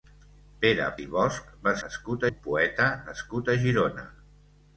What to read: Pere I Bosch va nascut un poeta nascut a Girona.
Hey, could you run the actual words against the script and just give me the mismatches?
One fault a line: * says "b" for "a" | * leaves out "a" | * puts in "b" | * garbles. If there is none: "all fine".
all fine